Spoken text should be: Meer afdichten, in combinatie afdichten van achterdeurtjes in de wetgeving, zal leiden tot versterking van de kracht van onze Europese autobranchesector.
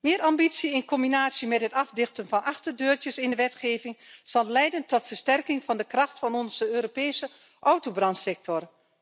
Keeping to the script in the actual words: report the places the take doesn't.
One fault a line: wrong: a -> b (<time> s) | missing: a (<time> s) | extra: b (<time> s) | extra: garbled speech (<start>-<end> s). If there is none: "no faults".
wrong: afdichten -> ambitie (0.2 s)
extra: met het (1.5 s)